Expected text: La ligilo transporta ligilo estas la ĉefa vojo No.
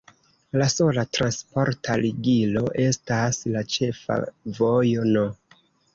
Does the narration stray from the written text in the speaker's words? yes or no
yes